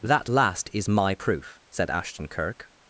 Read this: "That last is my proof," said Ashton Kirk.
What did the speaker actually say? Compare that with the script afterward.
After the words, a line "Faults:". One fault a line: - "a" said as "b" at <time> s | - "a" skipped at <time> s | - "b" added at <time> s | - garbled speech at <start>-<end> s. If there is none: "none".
"That last is my proof," said Ashton Kirk.
Faults:
none